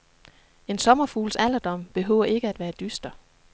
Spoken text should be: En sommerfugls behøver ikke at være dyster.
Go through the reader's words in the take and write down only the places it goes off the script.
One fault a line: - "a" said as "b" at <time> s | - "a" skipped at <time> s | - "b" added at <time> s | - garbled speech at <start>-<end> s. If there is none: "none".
- "alderdom" added at 1.3 s